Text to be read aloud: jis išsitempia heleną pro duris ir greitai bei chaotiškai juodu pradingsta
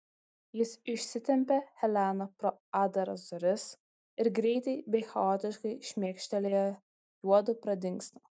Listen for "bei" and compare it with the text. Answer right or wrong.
right